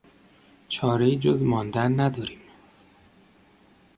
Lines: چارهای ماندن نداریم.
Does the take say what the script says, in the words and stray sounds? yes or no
no